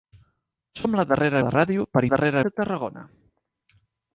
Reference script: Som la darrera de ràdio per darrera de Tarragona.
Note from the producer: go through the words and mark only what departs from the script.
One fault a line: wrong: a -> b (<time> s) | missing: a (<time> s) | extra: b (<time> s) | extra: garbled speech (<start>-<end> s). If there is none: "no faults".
no faults